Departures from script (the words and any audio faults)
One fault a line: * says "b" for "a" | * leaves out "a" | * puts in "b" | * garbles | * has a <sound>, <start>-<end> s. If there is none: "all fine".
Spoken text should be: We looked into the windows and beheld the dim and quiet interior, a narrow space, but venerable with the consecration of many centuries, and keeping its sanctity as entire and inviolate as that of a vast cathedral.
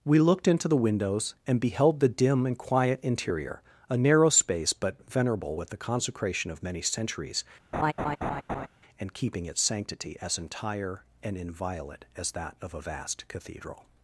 * has a laugh, 7.7-8.7 s